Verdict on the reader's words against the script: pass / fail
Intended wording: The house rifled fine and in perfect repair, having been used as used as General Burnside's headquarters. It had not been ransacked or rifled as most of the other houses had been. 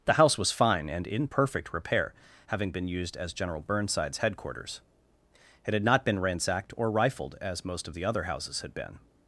fail